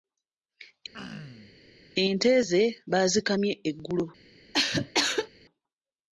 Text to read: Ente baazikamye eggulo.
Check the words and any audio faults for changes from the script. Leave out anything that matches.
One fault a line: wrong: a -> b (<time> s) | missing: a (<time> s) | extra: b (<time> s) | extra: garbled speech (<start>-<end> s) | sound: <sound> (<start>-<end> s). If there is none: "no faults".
sound: throat clearing (0.9-1.6 s)
extra: ze (2.5 s)
sound: cough (4.5-5.3 s)